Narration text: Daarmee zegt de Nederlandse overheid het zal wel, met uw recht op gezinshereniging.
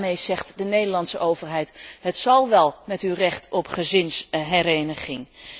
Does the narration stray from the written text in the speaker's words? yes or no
no